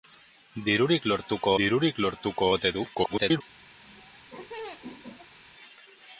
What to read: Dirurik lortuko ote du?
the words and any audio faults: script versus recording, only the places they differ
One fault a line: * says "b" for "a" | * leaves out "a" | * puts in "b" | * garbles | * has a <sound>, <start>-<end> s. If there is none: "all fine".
* puts in "dirurik lortuko"
* garbles
* has a laugh, 3.8-5.4 s